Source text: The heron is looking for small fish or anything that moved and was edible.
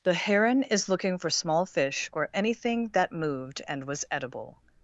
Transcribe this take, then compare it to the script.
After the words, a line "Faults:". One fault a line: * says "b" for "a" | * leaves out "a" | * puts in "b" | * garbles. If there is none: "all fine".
The heron is looking for small fish or anything that moved and was edible.
Faults:
all fine